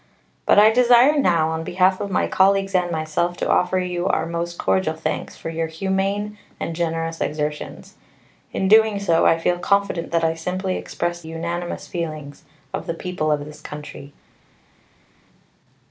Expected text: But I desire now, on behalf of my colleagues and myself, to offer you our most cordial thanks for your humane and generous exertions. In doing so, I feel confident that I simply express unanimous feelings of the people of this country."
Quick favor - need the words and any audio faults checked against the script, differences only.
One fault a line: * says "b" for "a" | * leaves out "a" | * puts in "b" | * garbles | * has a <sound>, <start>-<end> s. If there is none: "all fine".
all fine